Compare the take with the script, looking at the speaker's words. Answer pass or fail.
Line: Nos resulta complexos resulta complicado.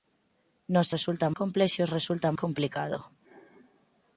pass